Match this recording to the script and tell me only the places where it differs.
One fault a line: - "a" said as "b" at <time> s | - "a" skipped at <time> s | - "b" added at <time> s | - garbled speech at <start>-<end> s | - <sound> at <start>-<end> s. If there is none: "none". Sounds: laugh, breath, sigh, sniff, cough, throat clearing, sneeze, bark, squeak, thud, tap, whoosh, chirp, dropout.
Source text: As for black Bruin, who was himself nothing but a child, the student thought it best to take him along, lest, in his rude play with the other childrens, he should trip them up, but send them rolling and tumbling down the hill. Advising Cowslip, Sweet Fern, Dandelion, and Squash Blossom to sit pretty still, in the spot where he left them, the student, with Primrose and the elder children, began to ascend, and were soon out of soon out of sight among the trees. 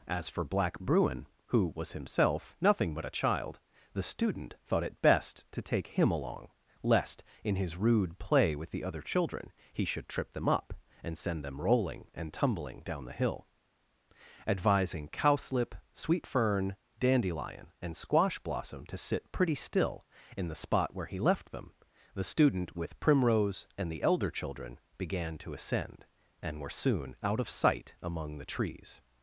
- "childrens" said as "children" at 9.0 s
- "but" said as "and" at 11.0 s
- "soon out of" skipped at 27.5 s